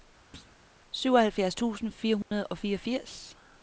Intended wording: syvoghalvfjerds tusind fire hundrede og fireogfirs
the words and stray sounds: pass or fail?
fail